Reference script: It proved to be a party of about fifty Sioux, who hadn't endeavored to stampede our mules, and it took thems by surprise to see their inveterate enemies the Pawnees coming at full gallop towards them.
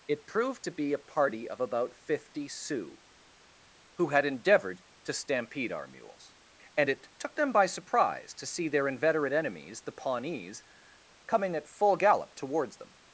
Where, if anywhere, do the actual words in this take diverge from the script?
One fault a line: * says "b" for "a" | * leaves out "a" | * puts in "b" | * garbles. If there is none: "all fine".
* says "had" for "hadn't"
* says "them" for "thems"